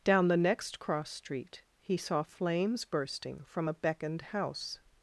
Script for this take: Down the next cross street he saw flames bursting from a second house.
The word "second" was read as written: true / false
false